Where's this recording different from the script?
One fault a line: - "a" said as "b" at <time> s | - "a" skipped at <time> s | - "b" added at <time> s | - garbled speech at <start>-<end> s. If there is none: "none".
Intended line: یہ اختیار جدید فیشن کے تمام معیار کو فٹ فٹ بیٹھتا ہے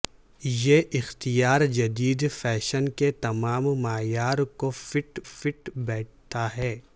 none